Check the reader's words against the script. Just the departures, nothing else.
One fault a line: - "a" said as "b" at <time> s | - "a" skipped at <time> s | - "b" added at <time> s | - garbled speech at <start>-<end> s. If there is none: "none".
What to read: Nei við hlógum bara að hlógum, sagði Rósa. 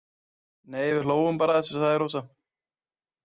- "hlógum" said as "þessu" at 1.6 s